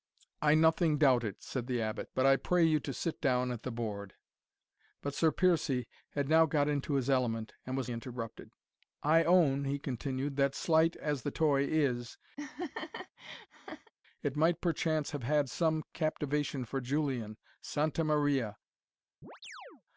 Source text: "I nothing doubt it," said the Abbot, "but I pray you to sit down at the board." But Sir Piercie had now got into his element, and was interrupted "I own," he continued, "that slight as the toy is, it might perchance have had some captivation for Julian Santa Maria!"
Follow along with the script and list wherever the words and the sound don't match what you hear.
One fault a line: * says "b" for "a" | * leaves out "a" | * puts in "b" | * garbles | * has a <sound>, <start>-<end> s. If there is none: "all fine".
* has a laugh, 12.4-13.9 s
* has a chirp, 19.2-19.8 s